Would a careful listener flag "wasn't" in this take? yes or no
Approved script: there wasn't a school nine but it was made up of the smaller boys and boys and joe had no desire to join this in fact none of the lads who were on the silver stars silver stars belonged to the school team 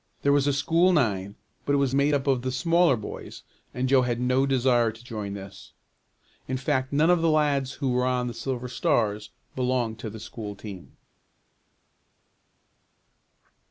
yes